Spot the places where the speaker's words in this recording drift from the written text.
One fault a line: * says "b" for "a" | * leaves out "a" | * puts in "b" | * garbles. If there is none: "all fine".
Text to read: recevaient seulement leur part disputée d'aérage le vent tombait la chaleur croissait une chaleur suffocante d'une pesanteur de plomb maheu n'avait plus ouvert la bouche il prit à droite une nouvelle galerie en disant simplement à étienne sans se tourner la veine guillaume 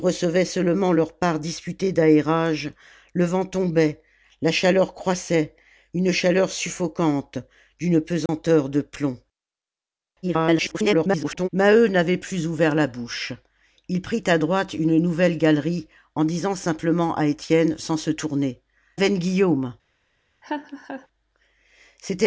* garbles
* leaves out "la"